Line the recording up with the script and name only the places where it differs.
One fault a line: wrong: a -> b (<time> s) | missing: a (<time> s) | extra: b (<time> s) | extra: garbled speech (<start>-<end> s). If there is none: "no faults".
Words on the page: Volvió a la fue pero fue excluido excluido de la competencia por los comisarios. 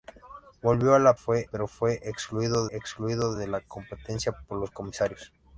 no faults